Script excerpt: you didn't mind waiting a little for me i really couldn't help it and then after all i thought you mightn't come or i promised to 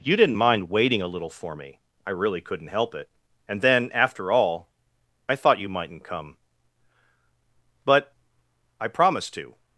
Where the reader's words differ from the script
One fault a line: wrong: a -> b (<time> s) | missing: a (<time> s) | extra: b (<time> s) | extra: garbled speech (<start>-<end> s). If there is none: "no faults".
wrong: or -> but (7.8 s)